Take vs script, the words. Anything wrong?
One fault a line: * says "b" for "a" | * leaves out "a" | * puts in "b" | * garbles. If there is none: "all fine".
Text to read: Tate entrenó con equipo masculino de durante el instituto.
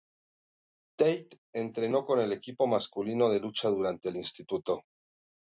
* puts in "el"
* puts in "lucha"